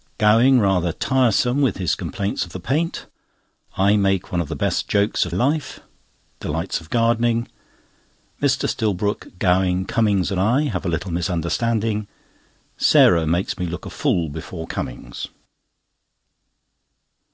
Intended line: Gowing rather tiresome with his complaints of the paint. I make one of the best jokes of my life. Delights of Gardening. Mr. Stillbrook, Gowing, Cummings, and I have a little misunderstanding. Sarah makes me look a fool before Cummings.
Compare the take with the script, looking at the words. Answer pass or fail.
fail